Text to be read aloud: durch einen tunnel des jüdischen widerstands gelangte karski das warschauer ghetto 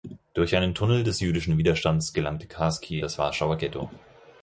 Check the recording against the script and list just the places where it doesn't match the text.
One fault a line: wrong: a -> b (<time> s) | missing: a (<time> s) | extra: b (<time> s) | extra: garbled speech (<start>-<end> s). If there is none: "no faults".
no faults